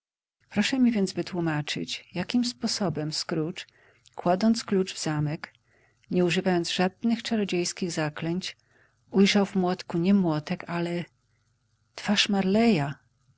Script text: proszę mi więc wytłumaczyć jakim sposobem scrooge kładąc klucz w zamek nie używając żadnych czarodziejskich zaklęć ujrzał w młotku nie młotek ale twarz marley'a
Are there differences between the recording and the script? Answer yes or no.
no